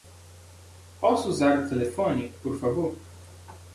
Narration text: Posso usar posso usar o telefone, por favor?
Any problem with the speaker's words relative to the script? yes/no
yes